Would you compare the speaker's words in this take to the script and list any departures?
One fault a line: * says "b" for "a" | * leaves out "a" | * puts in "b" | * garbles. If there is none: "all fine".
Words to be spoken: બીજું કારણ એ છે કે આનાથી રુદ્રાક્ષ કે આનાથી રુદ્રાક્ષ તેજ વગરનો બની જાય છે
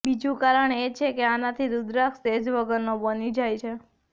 * leaves out "કે આનાથી રુદ્રાક્ષ"